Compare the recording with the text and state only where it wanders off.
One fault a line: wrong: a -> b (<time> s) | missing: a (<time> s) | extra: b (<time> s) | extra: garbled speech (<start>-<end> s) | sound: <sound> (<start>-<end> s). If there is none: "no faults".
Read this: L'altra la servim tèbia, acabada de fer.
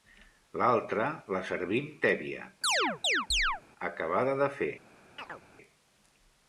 sound: chirp (2.6-3.6 s)
sound: chirp (5.2-5.4 s)